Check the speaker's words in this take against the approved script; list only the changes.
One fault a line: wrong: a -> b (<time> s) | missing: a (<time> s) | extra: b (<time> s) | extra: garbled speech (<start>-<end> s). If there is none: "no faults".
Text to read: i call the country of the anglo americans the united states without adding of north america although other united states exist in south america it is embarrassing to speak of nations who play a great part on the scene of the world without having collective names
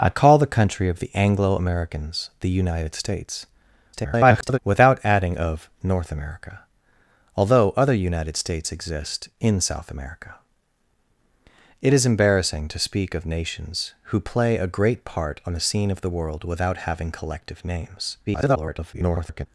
extra: garbled speech (3.9-4.6 s)
extra: garbled speech (18.3-19.5 s)